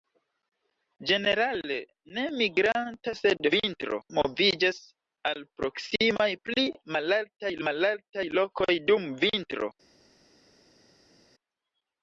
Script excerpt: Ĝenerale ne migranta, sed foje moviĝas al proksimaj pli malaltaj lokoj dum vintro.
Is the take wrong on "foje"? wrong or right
wrong